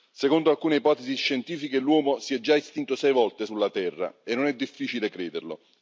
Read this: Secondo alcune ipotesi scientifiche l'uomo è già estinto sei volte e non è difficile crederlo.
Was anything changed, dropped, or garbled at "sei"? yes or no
no